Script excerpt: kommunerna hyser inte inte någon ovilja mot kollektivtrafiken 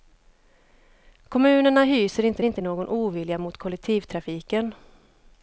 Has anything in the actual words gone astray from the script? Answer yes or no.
no